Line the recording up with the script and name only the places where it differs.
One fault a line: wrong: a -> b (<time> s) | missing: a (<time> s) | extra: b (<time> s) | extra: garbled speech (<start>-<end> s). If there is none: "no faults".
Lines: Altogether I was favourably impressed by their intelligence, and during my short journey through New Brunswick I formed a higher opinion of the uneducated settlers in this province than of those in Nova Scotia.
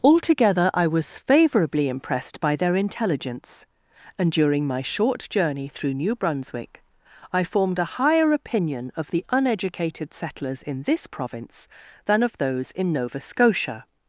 no faults